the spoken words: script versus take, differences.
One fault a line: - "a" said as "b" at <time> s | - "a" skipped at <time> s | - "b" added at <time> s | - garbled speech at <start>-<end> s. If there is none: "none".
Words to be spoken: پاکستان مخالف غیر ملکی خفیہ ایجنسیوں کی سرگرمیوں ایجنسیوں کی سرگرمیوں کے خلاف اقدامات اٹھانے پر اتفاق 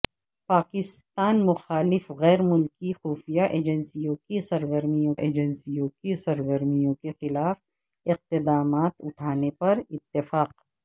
none